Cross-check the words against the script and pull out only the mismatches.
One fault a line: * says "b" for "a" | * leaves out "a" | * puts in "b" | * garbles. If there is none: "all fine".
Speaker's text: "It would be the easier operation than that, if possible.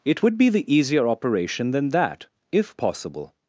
all fine